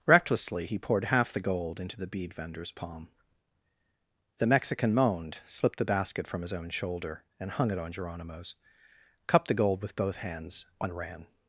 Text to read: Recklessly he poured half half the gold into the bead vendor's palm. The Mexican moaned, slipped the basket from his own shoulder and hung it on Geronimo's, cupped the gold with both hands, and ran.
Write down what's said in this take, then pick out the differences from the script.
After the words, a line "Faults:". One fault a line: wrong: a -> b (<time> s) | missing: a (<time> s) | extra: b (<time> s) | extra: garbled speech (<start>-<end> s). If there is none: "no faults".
Recklessly he poured half the gold into the bead vendor's palm. The Mexican moaned, slipped the basket from his own shoulder and hung it on Geronimo's, cupped the gold with both hands, and ran.
Faults:
missing: half (1.3 s)